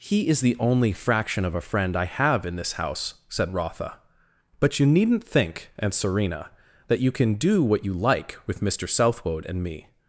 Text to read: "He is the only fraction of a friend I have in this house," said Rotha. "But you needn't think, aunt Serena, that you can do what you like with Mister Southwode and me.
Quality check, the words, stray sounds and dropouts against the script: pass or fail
pass